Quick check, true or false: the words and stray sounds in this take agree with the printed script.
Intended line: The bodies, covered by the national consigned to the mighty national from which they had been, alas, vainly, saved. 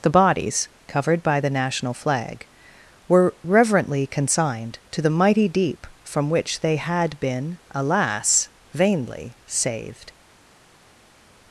false